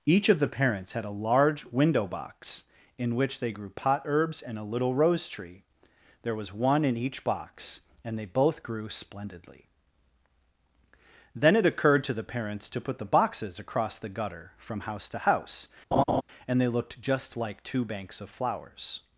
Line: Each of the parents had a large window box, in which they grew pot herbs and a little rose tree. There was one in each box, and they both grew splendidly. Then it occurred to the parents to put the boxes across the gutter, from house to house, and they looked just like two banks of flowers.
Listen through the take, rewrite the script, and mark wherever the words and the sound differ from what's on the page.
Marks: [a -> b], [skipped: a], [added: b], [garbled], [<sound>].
Each of the parents had a large window box, in which they grew pot herbs and a little rose tree. There was one in each box, and they both grew splendidly. Then it occurred to the parents to put the boxes across the gutter, from house to house, [laugh] and they looked just like two banks of flowers.